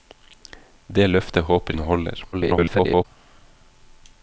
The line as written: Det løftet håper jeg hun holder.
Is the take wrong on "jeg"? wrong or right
wrong